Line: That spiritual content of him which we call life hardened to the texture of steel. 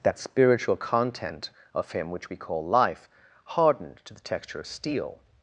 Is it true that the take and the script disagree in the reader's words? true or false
false